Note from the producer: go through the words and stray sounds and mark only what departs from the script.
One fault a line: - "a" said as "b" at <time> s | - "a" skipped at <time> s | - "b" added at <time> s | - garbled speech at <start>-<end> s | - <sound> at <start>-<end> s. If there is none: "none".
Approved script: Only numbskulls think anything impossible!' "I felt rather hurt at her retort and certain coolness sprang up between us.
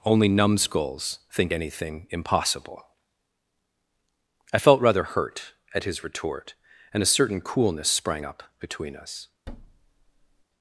- "her" said as "his" at 5.8 s
- "a" added at 7.0 s
- thud at 9.5-10.4 s